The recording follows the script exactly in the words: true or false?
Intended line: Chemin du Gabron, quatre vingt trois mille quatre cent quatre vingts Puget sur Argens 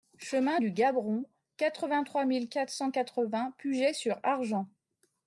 true